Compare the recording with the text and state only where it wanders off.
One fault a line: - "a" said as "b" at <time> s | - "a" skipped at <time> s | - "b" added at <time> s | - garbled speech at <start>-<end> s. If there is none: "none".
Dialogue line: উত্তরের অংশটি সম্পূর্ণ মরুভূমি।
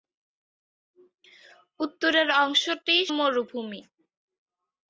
- "সম্পূর্ণ" skipped at 3.0 s